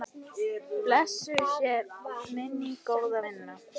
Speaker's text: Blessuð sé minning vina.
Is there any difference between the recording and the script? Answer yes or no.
yes